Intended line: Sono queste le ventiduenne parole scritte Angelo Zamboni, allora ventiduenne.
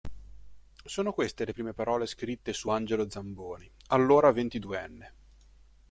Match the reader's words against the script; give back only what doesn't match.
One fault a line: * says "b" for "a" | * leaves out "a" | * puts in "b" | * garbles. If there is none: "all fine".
* says "prime" for "ventiduenne"
* puts in "su"